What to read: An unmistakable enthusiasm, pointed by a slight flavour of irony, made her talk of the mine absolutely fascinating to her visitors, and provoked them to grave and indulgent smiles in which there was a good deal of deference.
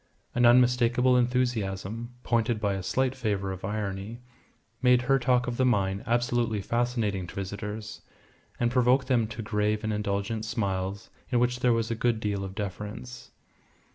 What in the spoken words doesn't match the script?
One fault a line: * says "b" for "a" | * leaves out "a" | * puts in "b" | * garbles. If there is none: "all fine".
* leaves out "her"